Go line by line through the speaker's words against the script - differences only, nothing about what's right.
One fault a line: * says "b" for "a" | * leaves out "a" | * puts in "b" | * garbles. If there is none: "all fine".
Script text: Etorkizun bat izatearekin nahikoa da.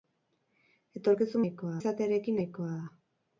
* says "nahikoa" for "bat"